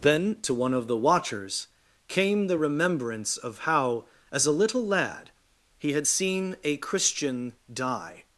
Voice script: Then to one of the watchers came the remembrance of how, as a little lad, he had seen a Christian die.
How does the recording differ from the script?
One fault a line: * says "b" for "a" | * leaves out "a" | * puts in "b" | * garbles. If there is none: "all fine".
all fine